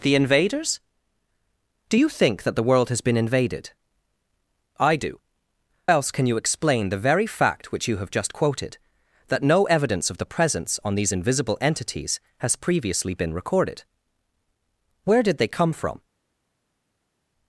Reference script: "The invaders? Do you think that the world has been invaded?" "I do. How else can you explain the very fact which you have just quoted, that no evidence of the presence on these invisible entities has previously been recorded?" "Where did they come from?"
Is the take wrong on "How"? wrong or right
wrong